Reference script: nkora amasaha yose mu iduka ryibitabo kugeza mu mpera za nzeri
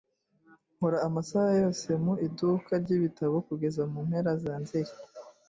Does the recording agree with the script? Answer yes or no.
yes